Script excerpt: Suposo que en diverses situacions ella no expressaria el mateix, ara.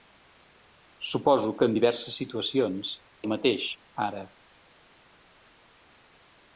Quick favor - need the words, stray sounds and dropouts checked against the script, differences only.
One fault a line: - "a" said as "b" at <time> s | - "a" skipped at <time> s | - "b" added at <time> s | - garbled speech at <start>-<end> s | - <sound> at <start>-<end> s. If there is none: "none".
- "ella no expressaria" skipped at 2.9 s